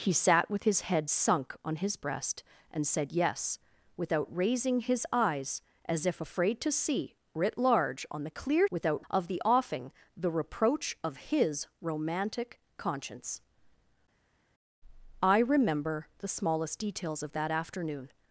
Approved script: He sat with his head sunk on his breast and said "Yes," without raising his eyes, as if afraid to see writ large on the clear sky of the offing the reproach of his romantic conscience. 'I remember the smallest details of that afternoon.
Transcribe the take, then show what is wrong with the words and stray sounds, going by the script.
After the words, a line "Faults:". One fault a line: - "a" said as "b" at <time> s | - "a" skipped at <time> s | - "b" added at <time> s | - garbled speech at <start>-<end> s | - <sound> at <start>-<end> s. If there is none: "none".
He sat with his head sunk on his breast and said "Yes," without raising his eyes, as if afraid to see writ large on the clear without of the offing the reproach of his romantic conscience. 'I remember the smallest details of that afternoon.
Faults:
- "sky" said as "without" at 8.7 s